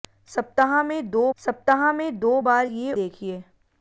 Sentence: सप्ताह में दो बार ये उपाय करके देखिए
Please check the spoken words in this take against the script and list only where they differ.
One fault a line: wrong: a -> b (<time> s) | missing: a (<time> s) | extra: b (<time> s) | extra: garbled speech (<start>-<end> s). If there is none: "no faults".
extra: सप्ताह में दो (1.4 s)
missing: उपाय करके (2.9 s)